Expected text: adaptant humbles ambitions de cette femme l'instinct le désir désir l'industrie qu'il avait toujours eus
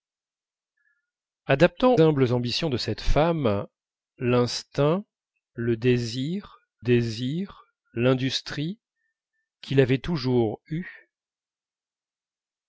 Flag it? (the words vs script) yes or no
no